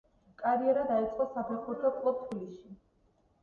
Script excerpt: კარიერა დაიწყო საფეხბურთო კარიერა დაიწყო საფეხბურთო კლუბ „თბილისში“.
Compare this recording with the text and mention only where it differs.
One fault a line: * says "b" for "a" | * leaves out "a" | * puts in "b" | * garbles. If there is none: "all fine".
* leaves out "კარიერა დაიწყო საფეხბურთო"